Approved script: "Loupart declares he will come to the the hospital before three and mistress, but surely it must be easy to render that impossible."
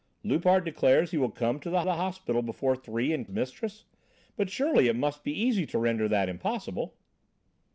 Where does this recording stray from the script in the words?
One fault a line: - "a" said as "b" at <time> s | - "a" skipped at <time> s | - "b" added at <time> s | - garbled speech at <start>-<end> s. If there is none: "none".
none